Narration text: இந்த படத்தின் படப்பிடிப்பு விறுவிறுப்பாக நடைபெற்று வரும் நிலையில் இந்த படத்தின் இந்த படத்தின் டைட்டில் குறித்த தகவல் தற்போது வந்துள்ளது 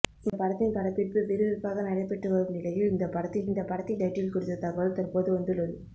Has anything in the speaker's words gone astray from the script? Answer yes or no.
no